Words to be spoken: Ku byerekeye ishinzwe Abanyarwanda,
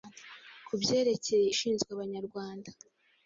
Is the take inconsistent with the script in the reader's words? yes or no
no